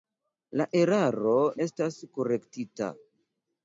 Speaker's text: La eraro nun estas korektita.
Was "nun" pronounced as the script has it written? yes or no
no